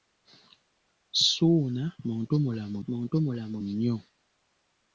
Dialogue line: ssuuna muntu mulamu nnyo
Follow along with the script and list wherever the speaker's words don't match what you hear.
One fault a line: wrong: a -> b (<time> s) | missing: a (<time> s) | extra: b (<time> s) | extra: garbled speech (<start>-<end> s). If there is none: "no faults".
extra: muntu mulamu (2.9 s)